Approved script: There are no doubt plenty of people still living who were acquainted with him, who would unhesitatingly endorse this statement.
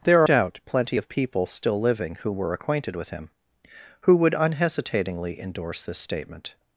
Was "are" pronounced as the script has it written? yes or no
no